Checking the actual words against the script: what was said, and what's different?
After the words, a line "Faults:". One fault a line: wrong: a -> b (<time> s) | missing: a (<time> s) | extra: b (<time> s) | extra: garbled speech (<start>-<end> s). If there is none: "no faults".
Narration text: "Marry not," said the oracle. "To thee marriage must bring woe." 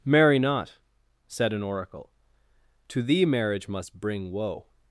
"Marry not," said an oracle. "To thee marriage must bring woe."
Faults:
wrong: the -> an (1.5 s)